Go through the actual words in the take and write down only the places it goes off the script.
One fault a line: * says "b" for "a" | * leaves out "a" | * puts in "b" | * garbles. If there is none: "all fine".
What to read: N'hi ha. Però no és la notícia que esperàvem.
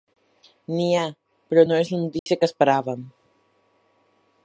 all fine